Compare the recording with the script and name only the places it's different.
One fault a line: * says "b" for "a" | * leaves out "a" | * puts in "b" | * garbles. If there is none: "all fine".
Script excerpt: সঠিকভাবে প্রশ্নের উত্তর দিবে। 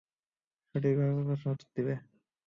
all fine